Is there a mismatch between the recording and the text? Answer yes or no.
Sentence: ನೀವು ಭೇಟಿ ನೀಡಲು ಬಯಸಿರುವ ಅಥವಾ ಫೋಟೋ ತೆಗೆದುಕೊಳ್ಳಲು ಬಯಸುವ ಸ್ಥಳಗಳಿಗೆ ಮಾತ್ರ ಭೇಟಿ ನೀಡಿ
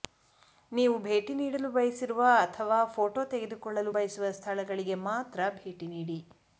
no